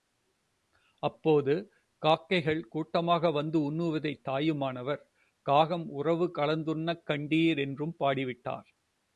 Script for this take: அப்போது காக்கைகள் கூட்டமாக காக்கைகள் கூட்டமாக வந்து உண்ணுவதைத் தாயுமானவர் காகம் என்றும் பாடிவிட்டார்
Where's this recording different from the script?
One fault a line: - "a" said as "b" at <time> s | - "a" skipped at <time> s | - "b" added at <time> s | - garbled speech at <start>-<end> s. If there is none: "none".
- "காக்கைகள் கூட்டமாக" skipped at 3.3 s
- "உறவு கலந்துண்ணக் கண்டீர்" added at 5.9 s